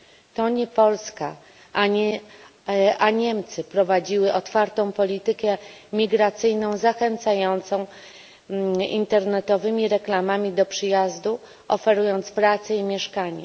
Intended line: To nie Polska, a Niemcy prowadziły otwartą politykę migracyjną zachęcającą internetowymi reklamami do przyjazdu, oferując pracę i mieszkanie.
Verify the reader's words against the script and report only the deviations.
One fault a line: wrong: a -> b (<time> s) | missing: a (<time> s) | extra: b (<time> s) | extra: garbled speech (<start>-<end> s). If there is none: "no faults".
no faults